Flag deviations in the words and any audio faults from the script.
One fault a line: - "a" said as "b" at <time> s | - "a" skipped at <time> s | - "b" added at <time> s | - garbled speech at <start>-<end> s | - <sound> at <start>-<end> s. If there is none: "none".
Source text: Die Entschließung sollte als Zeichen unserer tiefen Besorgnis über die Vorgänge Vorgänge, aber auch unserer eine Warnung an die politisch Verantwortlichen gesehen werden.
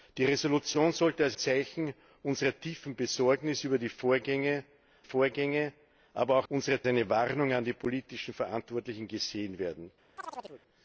- chirp at 10.2-10.6 s